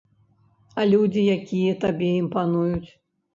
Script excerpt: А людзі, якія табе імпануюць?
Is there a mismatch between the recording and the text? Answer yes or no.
no